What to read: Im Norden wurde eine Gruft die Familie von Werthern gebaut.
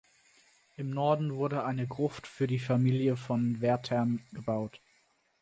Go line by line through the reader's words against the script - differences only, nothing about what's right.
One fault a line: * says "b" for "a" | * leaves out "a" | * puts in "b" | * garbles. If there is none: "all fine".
* puts in "für"